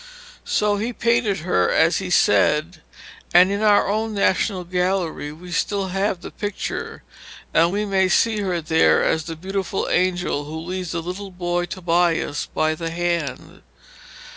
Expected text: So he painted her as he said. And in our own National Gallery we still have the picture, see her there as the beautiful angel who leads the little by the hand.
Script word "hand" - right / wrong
right